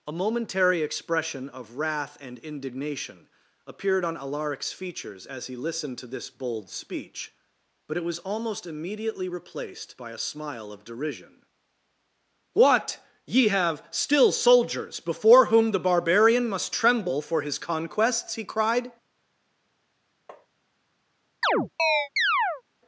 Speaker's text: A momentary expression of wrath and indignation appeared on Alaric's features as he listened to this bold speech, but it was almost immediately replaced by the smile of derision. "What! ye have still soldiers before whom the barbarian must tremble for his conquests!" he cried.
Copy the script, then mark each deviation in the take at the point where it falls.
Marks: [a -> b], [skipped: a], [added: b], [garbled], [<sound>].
A momentary expression of wrath and indignation appeared on Alaric's features as he listened to this bold speech, but it was almost immediately replaced by [the -> a] smile of derision. "What! ye have still soldiers before whom the barbarian must tremble for his conquests!" he cried. [tap] [chirp]